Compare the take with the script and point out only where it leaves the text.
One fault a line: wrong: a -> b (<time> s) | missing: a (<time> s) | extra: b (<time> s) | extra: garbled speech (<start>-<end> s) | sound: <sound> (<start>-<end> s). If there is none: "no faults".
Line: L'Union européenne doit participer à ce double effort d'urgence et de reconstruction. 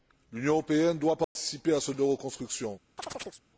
sound: dropout (1.2-1.4 s)
missing: double effort d'urgence (1.9 s)
sound: chirp (3.0-3.4 s)